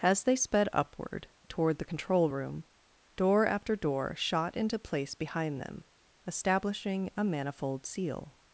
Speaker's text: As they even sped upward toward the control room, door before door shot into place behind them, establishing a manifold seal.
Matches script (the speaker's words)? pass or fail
fail